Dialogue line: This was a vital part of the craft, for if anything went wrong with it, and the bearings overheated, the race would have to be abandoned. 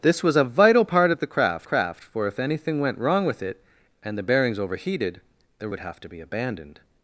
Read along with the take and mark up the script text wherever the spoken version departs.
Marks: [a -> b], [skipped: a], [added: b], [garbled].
This was a vital part of the craft, [added: craft] for if anything went wrong with it, and the bearings overheated, the [skipped: race] would have to be abandoned.